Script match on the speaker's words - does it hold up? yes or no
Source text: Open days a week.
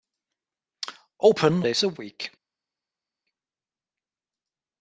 yes